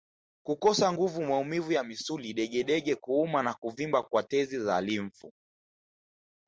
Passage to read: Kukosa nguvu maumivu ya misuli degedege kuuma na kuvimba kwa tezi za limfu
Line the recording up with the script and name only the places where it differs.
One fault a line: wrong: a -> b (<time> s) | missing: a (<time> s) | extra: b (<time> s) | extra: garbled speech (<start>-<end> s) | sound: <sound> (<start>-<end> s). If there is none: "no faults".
no faults